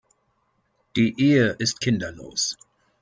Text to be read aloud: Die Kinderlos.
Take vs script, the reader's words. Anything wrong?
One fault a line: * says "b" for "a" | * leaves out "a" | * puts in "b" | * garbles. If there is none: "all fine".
* puts in "Ehe ist"